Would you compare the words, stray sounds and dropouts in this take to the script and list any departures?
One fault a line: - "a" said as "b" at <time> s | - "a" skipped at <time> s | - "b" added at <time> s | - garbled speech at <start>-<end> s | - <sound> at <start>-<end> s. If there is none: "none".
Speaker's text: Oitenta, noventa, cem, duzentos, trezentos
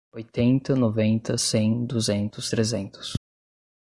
none